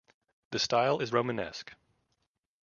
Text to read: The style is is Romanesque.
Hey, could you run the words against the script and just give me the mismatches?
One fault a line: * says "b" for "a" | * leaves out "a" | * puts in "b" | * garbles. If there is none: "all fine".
* leaves out "is"